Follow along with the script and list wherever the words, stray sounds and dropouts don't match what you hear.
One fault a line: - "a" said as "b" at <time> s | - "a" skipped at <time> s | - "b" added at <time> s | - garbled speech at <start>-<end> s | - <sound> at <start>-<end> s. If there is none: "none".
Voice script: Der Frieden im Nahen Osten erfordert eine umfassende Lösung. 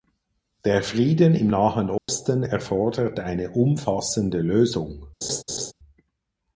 - dropout at 2.0-2.1 s
- laugh at 5.2-5.7 s